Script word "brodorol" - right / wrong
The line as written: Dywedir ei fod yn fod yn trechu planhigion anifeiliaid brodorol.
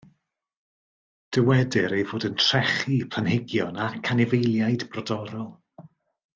right